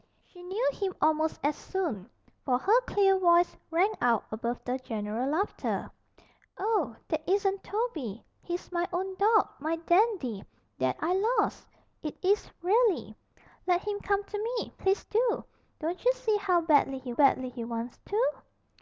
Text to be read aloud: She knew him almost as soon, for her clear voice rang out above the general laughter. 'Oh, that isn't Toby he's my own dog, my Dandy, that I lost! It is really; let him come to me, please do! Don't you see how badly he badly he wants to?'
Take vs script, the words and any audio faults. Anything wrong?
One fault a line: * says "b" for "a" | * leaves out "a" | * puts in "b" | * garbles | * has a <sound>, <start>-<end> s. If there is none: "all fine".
all fine